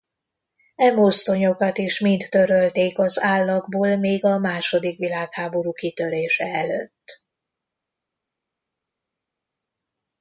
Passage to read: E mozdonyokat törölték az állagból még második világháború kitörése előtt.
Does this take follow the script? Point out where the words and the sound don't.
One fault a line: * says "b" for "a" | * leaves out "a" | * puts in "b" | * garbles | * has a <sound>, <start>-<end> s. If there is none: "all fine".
* puts in "is mind"
* puts in "a"